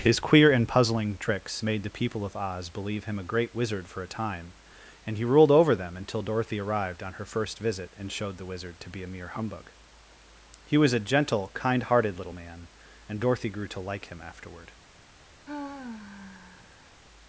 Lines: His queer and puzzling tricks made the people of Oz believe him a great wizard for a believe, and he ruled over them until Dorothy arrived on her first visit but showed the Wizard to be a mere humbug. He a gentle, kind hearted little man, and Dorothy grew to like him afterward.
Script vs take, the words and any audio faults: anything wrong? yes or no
yes